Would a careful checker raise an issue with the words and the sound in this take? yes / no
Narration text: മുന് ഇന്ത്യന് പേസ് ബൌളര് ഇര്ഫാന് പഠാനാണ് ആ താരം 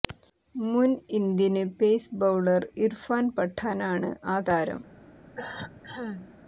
yes